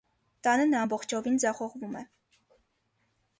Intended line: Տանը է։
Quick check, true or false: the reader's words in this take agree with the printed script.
false